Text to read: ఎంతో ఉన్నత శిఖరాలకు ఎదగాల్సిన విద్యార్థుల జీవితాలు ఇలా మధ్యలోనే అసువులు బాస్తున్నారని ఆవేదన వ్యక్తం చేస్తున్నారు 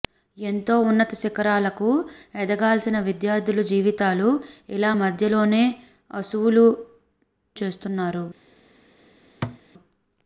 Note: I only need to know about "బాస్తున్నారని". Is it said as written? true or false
false